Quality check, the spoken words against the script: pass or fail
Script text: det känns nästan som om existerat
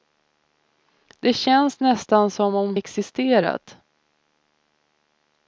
pass